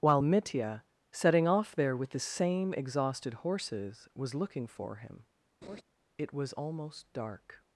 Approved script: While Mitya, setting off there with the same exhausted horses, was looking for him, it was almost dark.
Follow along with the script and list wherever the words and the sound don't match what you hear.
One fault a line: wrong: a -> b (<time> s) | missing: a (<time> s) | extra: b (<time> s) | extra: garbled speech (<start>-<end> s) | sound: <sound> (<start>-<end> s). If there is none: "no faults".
sound: laugh (5.6-5.8 s)